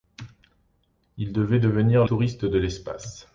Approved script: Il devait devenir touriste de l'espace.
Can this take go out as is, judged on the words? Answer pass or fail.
pass